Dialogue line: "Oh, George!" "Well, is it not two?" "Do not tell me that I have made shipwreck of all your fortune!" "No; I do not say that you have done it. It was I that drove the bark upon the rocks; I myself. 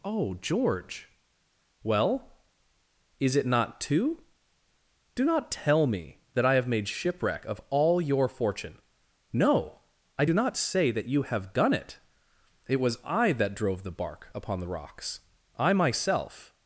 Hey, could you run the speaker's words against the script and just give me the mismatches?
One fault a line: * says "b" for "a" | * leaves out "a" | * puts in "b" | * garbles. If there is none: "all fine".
all fine